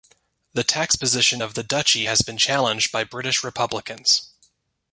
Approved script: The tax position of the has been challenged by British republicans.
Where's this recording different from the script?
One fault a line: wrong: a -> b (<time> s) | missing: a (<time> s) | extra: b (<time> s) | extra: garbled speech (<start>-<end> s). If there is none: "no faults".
extra: duchy (1.6 s)